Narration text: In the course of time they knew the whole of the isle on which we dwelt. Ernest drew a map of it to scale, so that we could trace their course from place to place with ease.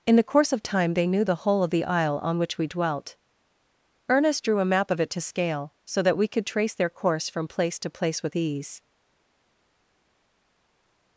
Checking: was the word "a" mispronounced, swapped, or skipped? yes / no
no